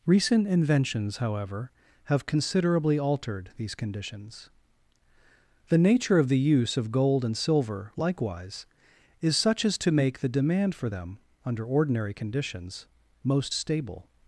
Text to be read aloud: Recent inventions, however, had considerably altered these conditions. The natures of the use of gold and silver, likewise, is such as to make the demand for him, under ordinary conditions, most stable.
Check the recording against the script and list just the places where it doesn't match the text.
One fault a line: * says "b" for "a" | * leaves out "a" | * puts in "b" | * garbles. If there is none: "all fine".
* says "have" for "had"
* says "nature" for "natures"
* says "them" for "him"